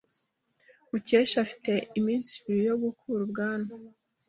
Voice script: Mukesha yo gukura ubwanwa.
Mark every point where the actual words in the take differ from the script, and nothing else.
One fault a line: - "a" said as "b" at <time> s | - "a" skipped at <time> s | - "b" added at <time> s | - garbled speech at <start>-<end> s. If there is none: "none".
- "afite iminsi ibiri" added at 1.4 s